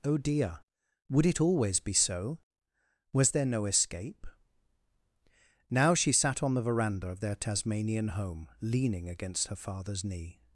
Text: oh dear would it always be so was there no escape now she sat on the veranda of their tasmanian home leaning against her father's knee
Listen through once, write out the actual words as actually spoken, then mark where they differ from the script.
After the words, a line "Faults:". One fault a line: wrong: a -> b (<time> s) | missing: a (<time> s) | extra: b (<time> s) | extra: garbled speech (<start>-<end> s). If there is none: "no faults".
oh dear would it always be so was there no escape now she sat on the veranda of their tasmanian home leaning against her father's knee
Faults:
no faults